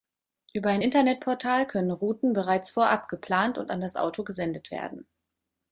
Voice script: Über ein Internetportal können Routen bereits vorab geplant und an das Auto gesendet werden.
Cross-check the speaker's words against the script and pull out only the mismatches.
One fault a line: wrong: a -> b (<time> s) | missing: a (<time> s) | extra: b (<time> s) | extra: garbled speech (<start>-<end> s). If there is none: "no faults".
no faults